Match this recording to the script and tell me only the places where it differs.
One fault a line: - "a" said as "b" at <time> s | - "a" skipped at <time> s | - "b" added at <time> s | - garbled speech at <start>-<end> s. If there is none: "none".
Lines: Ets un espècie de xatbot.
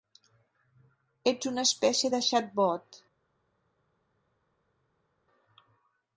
- "un" said as "una" at 1.5 s